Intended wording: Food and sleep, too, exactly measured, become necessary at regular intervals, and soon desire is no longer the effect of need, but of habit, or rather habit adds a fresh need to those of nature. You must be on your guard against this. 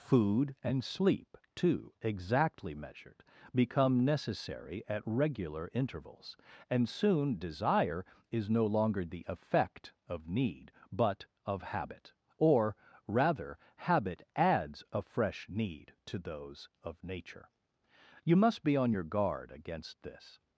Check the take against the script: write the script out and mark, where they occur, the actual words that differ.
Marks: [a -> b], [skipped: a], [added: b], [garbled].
Food and sleep, too, exactly measured, become necessary at regular intervals, and soon desire is no longer the effect of need, but of habit, or rather habit adds a fresh need to those of nature. You must be on your guard against this.